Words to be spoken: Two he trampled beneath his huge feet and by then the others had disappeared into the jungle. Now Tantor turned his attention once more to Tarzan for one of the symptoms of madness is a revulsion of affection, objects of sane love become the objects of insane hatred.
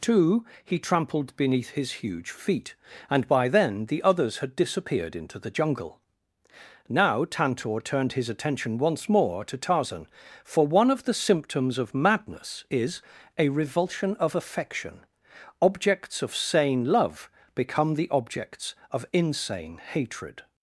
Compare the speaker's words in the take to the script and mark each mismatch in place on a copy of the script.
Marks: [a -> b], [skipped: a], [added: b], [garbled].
Two he trampled beneath his huge feet and by then the others had disappeared into the jungle. Now Tantor turned his attention once more to Tarzan for one of the symptoms of madness is a revulsion of affection, objects of sane love become the objects of insane hatred.